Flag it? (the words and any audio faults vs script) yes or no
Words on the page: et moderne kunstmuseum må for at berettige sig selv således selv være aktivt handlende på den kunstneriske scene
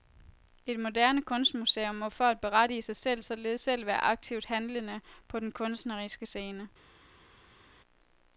no